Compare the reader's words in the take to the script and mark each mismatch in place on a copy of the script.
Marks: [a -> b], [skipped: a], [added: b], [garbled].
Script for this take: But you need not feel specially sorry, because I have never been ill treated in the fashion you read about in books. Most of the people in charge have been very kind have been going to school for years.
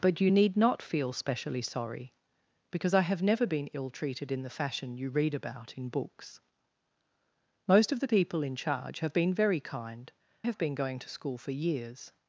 But you need not feel specially sorry, because I have never been ill treated in the fashion you read about in books. Most of the people in charge have been very kind have been going to school for years.